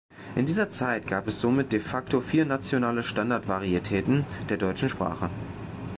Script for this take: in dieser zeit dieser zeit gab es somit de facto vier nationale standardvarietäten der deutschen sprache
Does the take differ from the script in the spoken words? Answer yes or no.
yes